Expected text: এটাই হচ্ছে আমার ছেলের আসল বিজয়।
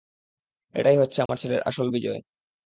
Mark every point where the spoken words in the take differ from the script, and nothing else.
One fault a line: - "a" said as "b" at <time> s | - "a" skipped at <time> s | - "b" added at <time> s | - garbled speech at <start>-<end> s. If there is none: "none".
none